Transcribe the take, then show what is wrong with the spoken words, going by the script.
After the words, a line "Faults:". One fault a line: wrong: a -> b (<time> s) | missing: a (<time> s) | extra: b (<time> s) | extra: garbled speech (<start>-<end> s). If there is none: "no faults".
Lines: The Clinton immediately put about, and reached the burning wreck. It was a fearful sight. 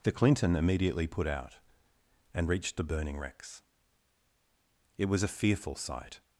The Clinton immediately put out, and reached the burning wrecks. It was a fearful sight.
Faults:
wrong: about -> out (1.3 s)
wrong: wreck -> wrecks (3.2 s)